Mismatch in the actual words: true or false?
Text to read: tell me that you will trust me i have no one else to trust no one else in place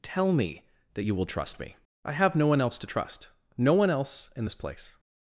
true